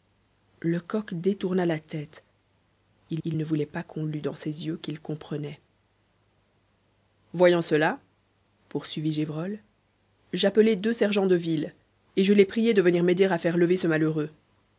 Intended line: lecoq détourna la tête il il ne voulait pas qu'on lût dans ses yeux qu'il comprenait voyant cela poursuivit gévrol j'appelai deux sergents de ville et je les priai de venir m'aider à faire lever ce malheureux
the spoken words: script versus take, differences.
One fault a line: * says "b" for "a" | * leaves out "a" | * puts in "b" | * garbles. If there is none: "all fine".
all fine